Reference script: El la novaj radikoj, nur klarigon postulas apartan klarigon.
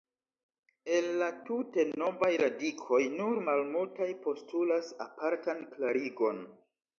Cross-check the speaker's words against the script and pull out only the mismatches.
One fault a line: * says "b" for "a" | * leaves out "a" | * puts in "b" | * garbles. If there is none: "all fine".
* puts in "tute"
* says "malmultaj" for "klarigon"